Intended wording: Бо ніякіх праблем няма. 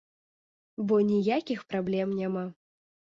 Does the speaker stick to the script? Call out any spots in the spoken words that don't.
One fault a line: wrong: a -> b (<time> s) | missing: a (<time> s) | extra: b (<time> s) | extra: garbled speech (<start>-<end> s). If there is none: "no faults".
no faults